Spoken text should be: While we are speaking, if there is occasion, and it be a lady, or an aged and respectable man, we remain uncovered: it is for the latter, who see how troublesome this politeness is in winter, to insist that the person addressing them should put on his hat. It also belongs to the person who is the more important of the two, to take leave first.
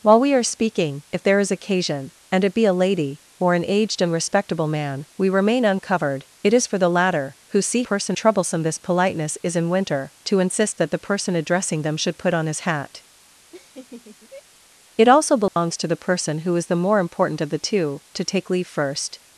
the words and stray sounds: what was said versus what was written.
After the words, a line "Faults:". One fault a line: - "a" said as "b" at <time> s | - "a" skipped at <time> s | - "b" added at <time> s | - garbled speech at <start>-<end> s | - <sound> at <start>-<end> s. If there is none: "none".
While we are speaking, if there is occasion, and it be a lady, or an aged and respectable man, we remain uncovered: it is for the latter, who see person troublesome this politeness is in winter, to insist that the person addressing them should put on his hat. It also belongs to the person who is the more important of the two, to take leave first.
Faults:
- "how" said as "person" at 7.8 s
- laugh at 13.5-14.4 s
- dropout at 15.5-15.6 s